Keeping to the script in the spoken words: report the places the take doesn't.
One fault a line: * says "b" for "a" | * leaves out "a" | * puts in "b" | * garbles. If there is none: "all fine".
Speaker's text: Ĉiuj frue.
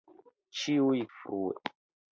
all fine